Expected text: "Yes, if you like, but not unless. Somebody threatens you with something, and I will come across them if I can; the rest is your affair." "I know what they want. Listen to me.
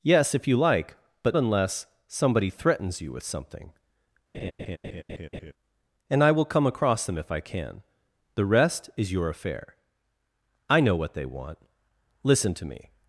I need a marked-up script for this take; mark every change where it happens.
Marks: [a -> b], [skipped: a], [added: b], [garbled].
"Yes, if you like, but [skipped: not] unless. Somebody threatens you with something, and I will come across them if I can; the rest is your affair." "I know what they want. Listen to me.